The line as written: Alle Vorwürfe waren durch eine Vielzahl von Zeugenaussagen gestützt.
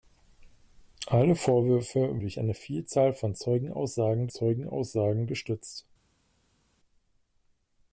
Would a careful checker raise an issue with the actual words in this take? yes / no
yes